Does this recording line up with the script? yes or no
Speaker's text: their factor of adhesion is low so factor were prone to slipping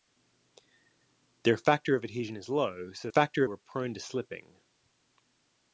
yes